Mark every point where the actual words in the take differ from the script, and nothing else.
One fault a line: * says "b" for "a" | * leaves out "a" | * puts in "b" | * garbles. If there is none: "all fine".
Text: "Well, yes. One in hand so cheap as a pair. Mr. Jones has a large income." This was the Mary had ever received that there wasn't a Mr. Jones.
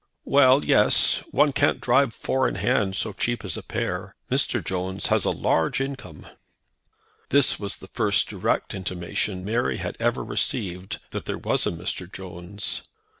* puts in "can't drive four"
* puts in "first direct intimation"
* says "was" for "wasn't"